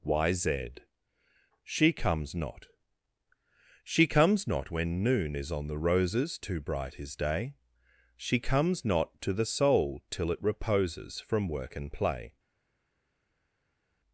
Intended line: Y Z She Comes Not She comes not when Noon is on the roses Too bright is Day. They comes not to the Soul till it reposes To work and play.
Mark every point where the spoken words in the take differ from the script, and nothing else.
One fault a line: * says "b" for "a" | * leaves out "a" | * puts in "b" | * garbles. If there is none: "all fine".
* says "She" for "They"
* says "From" for "To"